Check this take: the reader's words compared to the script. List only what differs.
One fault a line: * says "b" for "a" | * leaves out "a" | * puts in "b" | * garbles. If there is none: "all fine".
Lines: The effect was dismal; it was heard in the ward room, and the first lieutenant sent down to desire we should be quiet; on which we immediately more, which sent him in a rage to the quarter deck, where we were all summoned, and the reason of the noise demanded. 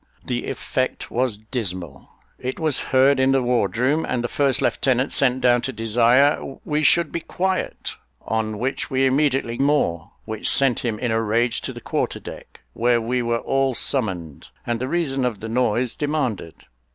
all fine